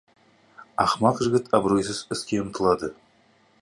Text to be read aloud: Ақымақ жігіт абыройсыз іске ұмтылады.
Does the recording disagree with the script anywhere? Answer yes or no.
no